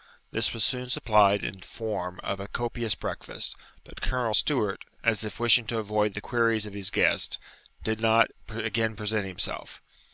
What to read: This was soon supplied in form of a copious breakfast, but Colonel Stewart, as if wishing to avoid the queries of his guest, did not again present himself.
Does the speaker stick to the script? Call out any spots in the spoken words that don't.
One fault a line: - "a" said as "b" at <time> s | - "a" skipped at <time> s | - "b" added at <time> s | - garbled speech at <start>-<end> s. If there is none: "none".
none